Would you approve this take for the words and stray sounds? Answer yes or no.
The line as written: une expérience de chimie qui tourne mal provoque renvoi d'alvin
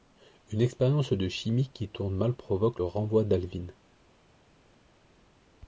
yes